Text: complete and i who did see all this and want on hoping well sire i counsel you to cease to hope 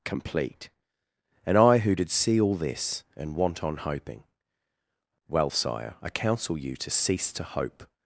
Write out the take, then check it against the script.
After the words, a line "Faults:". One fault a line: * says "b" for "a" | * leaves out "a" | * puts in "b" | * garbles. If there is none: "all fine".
complete and i who did see all this and want on hoping well sire i counsel you to cease to hope
Faults:
all fine